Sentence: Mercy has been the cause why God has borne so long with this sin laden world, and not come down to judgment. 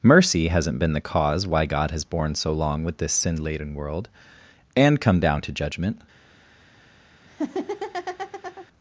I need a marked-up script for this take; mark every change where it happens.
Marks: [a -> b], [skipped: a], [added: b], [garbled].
Mercy [has -> hasn't] been the cause why God has borne so long with this sin laden world, and [skipped: not] come down to judgment.